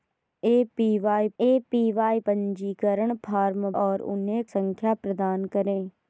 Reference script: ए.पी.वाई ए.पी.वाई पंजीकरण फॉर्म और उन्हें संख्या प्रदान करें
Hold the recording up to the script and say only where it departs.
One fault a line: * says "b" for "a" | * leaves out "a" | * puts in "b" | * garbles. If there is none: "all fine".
all fine